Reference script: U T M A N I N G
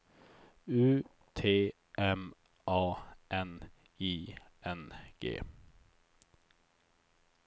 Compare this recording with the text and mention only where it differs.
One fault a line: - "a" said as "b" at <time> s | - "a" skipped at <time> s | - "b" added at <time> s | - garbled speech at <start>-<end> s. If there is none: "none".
none